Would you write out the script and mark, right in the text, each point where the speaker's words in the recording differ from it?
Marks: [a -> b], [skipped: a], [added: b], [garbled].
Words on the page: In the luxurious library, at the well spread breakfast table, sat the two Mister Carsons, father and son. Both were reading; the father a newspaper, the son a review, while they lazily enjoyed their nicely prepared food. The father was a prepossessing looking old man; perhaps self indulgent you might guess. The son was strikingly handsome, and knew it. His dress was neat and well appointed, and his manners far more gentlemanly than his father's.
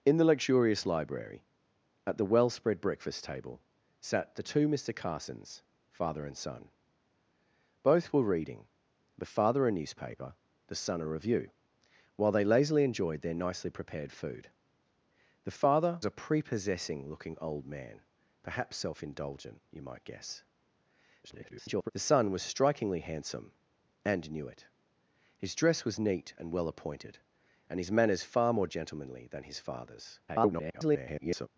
In the luxurious library, at the well spread breakfast table, sat the two Mister Carsons, father and son. Both were reading; the father a newspaper, the son a review, while they lazily enjoyed their nicely prepared food. The father [skipped: was] a prepossessing looking old man; perhaps self indulgent you might guess. [garbled] The son was strikingly handsome, and knew it. His dress was neat and well appointed, and his manners far more gentlemanly than his father's. [garbled]